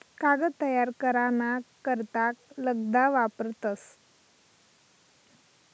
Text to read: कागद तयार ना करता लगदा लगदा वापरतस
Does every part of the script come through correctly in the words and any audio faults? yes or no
no